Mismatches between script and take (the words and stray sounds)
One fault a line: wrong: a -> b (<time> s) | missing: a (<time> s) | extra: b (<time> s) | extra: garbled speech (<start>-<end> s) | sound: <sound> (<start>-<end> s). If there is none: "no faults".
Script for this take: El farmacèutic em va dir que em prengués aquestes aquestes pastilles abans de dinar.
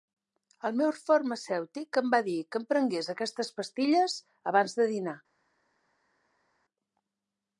extra: meu (0.8 s)
missing: aquestes (3.5 s)